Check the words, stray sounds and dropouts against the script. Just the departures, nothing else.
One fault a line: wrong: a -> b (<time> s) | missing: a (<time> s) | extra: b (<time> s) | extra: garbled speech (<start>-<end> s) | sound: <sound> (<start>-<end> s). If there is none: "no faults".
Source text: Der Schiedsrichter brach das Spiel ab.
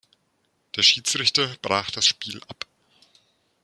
no faults